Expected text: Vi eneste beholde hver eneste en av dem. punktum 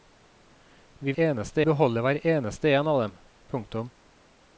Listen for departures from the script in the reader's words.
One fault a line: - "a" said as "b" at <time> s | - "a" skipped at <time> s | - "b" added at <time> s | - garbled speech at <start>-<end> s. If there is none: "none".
none